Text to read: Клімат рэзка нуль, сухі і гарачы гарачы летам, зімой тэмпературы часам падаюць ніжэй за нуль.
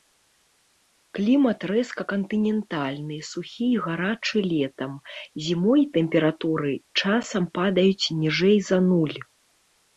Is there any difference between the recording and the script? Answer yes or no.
yes